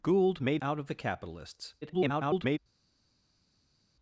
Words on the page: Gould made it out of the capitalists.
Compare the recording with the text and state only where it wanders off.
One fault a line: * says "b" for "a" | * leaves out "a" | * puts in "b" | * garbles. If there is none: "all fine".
* leaves out "it"
* garbles